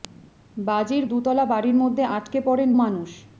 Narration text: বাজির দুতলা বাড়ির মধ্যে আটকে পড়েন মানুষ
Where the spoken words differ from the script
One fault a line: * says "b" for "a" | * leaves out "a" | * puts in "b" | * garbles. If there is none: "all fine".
all fine